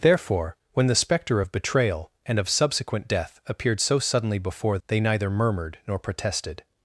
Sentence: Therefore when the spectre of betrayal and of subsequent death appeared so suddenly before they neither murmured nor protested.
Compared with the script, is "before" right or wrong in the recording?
right